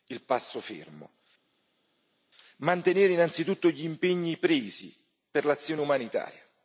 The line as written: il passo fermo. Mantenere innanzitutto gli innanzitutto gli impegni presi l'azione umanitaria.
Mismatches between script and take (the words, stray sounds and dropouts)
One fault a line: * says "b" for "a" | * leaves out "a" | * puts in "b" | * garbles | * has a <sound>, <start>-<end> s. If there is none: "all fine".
* leaves out "innanzitutto gli"
* puts in "per"